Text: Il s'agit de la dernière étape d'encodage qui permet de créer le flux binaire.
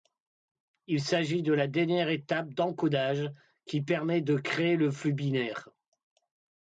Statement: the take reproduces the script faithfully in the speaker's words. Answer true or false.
true